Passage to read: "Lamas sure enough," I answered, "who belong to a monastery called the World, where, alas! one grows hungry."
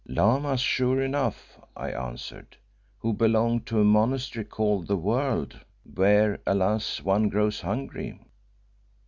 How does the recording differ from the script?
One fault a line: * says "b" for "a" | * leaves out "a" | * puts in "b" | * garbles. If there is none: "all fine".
all fine